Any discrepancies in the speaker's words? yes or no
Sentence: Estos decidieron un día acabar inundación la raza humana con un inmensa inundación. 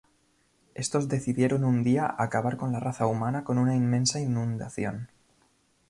yes